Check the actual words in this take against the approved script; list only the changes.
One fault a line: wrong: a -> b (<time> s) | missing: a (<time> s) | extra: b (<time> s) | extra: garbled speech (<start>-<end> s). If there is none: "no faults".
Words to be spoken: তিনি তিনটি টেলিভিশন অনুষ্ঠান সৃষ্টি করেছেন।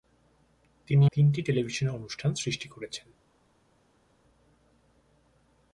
no faults